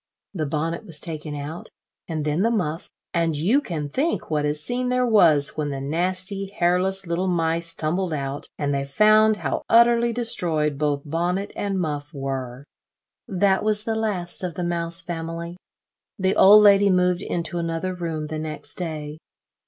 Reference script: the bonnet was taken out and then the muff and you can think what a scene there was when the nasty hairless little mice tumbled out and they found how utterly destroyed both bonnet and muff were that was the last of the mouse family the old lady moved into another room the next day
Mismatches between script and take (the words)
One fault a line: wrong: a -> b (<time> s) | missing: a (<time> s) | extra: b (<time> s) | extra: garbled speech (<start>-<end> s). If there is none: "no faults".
no faults